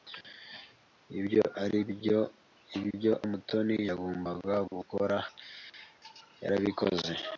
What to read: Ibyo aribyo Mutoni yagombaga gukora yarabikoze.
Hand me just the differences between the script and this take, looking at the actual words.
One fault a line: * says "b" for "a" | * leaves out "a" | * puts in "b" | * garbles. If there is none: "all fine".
* leaves out "aribyo"